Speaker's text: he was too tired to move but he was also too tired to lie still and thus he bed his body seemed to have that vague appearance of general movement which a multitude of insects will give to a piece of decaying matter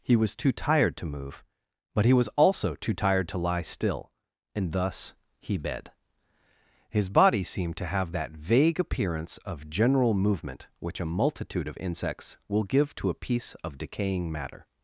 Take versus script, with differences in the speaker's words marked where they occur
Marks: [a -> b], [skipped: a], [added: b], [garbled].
he was too tired to move but he was also too tired to lie still and thus he bed his body seemed to have that vague appearance of general movement which a multitude of insects will give to a piece of decaying matter